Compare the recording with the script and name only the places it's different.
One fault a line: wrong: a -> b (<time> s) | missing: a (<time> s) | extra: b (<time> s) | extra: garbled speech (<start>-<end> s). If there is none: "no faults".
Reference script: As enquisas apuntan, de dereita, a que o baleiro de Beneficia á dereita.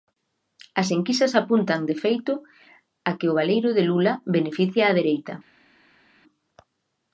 wrong: dereita -> feito (2.0 s)
extra: Lula (3.9 s)